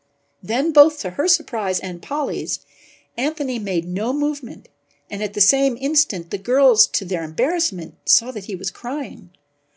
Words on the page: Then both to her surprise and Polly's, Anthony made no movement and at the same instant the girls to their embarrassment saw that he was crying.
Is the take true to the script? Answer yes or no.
yes